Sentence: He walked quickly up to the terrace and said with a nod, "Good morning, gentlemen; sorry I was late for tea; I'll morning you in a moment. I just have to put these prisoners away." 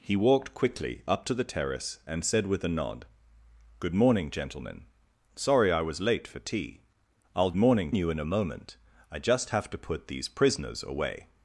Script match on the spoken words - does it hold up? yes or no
yes